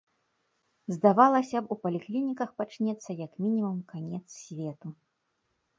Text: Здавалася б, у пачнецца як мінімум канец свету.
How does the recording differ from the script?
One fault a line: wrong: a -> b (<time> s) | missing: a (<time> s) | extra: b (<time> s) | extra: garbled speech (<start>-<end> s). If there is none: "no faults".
extra: паліклініках (1.8 s)